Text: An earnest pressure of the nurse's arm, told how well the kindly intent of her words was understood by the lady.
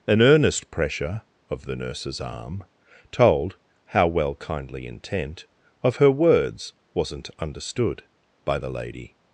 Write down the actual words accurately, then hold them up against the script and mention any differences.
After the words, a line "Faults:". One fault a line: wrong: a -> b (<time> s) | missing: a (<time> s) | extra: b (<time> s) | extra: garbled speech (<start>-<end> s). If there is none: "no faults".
An earnest pressure of the nurse's arm, told how well kindly intent of her words wasn't understood by the lady.
Faults:
missing: the (4.3 s)
wrong: was -> wasn't (6.9 s)